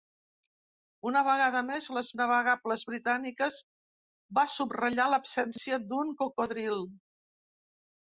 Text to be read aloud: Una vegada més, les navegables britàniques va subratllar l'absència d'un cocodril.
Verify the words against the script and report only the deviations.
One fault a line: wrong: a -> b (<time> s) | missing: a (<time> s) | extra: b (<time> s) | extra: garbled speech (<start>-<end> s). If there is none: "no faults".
no faults